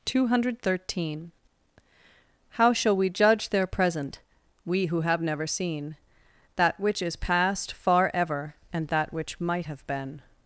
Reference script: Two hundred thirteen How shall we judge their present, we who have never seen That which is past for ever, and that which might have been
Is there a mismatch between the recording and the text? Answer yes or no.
yes